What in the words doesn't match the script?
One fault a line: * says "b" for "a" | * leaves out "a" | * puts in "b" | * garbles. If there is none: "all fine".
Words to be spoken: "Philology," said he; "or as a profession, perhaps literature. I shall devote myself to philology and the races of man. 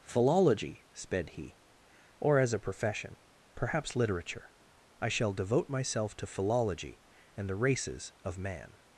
* says "sped" for "said"